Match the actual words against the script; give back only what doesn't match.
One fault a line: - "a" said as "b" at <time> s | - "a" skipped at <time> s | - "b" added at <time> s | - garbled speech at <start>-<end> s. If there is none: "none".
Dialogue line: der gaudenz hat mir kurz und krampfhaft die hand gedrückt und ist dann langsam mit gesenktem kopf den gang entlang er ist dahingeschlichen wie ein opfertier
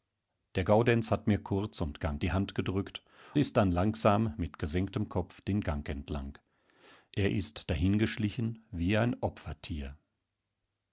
- "krampfhaft" said as "gang" at 2.0 s
- "und" skipped at 3.0 s